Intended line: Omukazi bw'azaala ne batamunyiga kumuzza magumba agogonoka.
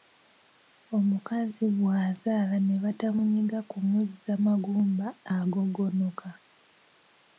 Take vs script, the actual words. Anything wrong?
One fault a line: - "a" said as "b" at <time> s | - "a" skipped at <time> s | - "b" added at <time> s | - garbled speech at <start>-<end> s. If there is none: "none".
none